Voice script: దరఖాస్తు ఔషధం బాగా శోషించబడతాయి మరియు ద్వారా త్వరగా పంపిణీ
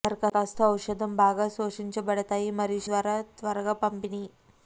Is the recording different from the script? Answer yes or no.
no